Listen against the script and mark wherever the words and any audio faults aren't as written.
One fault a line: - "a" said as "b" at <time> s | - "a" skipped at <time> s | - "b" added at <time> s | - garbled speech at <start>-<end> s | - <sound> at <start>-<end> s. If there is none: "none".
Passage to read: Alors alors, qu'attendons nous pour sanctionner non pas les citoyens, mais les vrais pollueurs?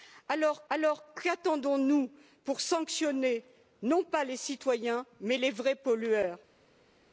none